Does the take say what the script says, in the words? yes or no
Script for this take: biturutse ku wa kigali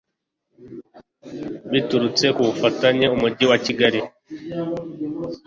no